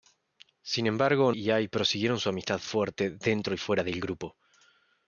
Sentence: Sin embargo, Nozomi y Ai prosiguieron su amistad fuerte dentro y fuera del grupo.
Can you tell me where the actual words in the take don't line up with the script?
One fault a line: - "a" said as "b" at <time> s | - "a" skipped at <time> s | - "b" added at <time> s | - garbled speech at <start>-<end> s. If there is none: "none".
- "Nozomi" skipped at 1.3 s